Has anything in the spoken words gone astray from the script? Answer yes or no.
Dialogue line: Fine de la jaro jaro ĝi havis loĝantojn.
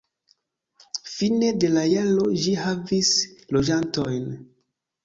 yes